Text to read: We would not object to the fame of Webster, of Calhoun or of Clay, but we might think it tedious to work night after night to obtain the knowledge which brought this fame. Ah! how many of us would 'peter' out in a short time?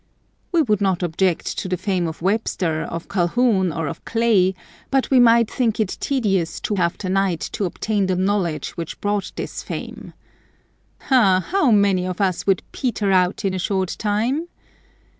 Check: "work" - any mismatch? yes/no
yes